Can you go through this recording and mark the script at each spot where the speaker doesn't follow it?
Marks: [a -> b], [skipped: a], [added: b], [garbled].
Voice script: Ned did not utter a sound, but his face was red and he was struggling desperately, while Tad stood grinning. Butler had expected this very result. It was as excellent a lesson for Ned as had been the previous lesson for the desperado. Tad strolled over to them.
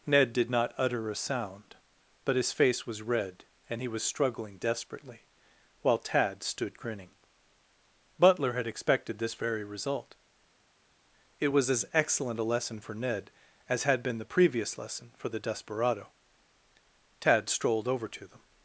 Ned did not utter a sound, but his face was red and he was struggling desperately, while Tad stood grinning. Butler had expected this very result. It was as excellent a lesson for Ned as had been the previous lesson for the desperado. Tad strolled over to them.